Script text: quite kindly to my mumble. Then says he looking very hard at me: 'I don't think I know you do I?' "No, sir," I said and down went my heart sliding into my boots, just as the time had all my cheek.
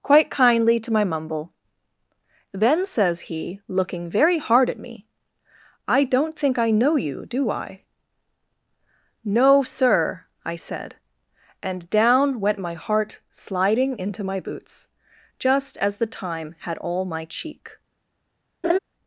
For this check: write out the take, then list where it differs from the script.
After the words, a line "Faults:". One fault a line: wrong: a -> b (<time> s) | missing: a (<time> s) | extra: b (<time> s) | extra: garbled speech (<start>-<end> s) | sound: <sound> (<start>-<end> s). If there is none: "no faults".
quite kindly to my mumble. Then says he looking very hard at me: 'I don't think I know you do I?' "No, sir," I said and down went my heart sliding into my boots, just as the time had all my cheek.
Faults:
sound: laugh (18.6-18.8 s)